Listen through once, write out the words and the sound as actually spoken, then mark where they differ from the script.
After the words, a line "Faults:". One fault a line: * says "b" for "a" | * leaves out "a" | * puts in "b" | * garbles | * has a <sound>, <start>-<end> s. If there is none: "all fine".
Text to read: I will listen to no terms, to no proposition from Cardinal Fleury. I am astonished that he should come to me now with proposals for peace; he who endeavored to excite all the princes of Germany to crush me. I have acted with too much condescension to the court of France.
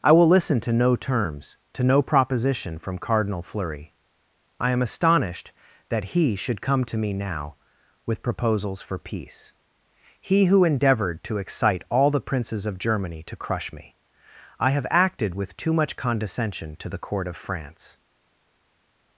I will listen to no terms, to no proposition from Cardinal Fleury. I am astonished that he should come to me now with proposals for peace; he who endeavored to excite all the princes of Germany to crush me. I have acted with too much condescension to the court of France.
Faults:
all fine